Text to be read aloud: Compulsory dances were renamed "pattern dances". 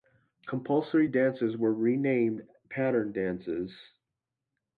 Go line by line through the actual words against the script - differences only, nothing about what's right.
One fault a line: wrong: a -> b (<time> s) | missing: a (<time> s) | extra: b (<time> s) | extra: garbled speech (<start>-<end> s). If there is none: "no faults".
no faults